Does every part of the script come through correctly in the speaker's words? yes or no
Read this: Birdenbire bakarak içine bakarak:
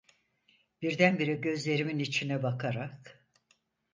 no